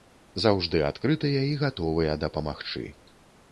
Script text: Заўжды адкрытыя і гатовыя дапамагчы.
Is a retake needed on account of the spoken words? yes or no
no